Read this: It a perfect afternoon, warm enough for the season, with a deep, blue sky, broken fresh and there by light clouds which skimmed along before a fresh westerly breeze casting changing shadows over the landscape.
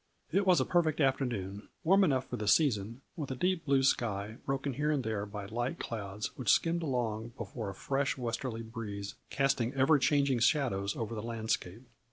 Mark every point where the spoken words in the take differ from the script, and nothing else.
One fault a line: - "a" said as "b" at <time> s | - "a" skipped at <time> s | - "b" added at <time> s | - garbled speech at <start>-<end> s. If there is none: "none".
- "was" added at 0.5 s
- "fresh" said as "here" at 4.7 s
- "ever" added at 9.7 s